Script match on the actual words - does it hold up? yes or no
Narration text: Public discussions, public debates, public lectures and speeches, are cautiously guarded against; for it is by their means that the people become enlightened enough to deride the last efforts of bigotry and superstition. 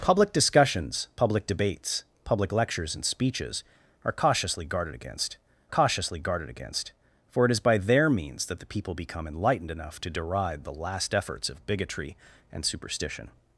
no